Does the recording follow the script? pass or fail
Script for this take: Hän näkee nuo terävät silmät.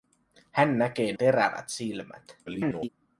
fail